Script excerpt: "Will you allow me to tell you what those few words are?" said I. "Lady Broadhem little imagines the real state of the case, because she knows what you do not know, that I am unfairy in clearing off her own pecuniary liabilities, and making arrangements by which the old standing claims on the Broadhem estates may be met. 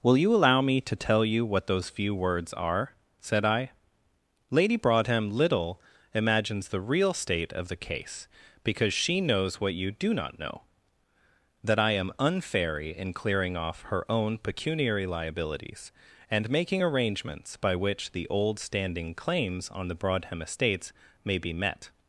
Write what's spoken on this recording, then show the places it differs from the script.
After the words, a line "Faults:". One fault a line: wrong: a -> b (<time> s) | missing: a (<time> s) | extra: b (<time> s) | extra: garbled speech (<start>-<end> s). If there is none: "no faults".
"Will you allow me to tell you what those few words are?" said I. "Lady Broadhem little imagines the real state of the case, because she knows what you do not know, that I am unfairy in clearing off her own pecuniary liabilities, and making arrangements by which the old standing claims on the Broadhem estates may be met.
Faults:
no faults